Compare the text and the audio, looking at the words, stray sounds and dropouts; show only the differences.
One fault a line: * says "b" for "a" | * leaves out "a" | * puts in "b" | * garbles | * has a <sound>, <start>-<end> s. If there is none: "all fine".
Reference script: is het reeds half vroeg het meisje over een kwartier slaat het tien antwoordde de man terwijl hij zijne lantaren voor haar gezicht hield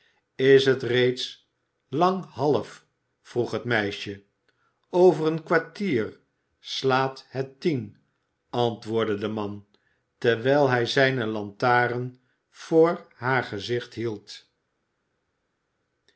* puts in "lang"